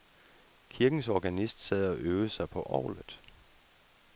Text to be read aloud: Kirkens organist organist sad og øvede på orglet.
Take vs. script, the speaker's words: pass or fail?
fail